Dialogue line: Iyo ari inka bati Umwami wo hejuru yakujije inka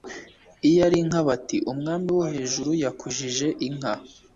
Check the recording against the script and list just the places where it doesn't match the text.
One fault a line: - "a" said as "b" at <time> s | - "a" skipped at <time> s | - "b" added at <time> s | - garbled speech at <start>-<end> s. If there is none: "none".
none